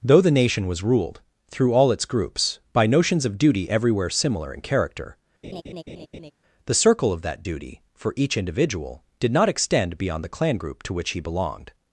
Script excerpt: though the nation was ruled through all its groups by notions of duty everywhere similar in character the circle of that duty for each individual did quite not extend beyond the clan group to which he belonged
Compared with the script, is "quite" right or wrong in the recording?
wrong